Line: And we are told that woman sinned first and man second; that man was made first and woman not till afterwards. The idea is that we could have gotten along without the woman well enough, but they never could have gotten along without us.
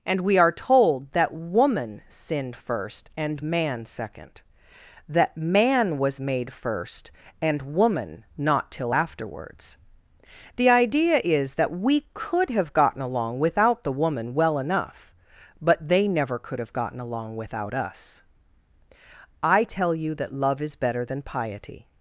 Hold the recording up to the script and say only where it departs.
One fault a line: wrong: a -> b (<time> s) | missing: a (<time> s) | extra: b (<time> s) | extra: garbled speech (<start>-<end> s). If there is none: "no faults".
extra: I tell you that love is better than piety (19.4 s)